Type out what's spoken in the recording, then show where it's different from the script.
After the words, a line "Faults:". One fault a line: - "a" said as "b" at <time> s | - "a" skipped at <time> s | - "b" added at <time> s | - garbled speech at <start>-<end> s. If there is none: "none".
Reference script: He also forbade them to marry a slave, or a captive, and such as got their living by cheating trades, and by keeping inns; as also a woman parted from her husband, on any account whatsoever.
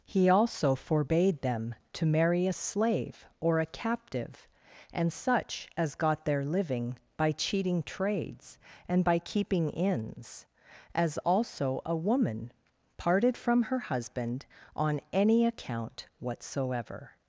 He also forbade them to marry a slave, or a captive, and such as got their living by cheating trades, and by keeping inns; as also a woman parted from her husband, on any account whatsoever.
Faults:
none